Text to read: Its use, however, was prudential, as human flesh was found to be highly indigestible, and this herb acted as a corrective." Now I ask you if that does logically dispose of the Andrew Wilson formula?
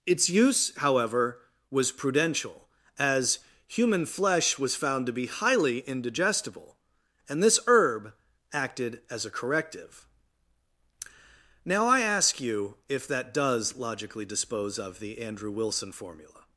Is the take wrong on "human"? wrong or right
right